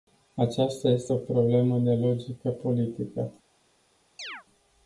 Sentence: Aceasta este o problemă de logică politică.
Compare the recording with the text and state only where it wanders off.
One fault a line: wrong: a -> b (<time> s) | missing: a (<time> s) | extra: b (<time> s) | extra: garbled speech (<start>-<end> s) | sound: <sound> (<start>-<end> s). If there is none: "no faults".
sound: chirp (4.2-4.4 s)